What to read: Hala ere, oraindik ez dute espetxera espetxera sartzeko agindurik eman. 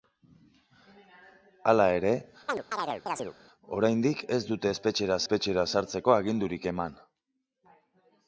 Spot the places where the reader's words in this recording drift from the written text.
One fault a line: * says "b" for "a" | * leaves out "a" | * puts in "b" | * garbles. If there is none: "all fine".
all fine